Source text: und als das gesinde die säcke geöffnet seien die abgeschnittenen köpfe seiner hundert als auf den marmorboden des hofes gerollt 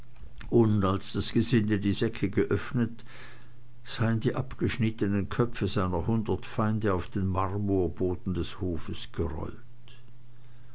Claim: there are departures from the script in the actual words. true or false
true